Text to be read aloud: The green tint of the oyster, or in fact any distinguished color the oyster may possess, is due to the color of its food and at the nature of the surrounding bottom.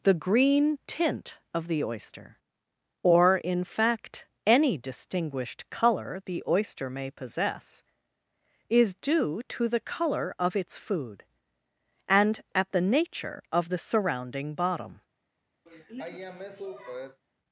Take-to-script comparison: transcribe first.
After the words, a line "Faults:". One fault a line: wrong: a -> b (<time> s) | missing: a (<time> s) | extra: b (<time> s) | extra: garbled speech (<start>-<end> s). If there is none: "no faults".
The green tint of the oyster, or in fact any distinguished color the oyster may possess, is due to the color of its food and at the nature of the surrounding bottom.
Faults:
no faults